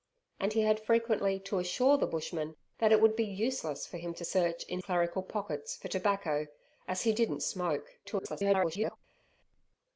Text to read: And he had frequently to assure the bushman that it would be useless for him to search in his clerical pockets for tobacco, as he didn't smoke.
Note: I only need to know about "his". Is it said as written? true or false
false